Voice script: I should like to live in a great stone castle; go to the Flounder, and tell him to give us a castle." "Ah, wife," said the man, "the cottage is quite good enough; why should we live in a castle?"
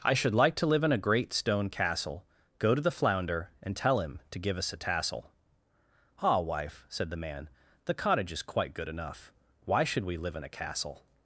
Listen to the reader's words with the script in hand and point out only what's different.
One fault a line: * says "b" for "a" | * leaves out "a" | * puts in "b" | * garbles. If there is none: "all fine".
* says "tassel" for "castle"